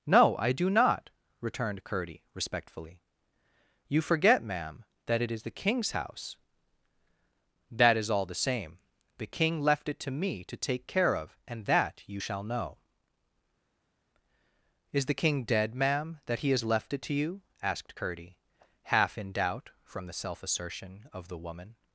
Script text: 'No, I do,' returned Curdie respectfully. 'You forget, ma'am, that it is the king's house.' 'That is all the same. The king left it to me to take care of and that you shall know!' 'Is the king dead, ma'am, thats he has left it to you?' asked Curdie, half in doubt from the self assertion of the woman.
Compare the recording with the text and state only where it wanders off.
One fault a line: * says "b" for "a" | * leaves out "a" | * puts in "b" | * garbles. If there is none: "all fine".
* puts in "not"
* says "that" for "thats"